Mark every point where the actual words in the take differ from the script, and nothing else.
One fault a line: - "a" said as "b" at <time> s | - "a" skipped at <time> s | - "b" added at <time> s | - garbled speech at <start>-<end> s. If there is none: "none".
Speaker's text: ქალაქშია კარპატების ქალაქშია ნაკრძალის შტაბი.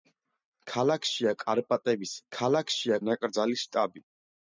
none